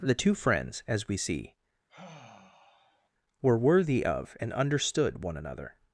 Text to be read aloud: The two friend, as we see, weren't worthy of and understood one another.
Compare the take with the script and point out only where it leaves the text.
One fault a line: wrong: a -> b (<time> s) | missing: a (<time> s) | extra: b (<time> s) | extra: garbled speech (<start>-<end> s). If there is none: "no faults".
wrong: friend -> friends (0.3 s)
wrong: weren't -> were (3.4 s)